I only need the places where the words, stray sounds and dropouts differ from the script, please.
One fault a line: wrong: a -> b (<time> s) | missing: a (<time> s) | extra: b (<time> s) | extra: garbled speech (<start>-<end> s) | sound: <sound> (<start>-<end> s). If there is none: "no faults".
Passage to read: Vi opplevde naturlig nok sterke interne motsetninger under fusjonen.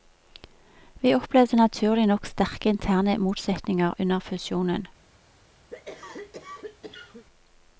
sound: cough (5.7-7.2 s)